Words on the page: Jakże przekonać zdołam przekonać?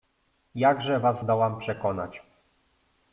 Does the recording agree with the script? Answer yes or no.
no